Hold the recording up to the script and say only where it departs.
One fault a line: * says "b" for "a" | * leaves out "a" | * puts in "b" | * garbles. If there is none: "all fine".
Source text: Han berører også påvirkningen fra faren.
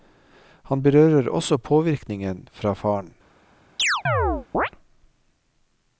all fine